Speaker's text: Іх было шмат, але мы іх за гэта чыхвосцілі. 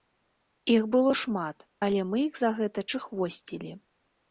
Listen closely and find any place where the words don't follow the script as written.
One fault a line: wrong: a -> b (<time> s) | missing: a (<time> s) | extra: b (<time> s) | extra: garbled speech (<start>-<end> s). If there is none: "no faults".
no faults